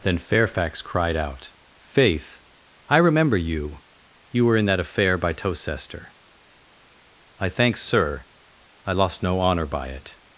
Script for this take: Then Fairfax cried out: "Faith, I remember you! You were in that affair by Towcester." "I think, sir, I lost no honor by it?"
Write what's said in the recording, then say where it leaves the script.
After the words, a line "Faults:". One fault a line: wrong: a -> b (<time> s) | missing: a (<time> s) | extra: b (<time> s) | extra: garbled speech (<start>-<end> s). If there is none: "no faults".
Then Fairfax cried out: "Faith, I remember you! You were in that affair by Towcester." "I thank, sir, I lost no honor by it?"
Faults:
wrong: think -> thank (7.5 s)